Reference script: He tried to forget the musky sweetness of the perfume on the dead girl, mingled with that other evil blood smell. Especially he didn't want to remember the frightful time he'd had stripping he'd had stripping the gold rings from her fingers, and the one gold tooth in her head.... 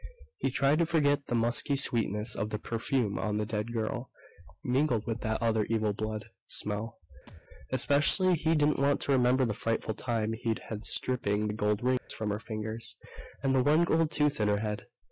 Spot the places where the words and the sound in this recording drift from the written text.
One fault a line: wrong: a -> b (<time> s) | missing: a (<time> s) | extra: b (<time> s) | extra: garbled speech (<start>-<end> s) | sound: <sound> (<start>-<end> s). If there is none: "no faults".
sound: thud (7.3-7.4 s)
missing: he'd had stripping (11.5 s)
sound: dropout (12.0-12.1 s)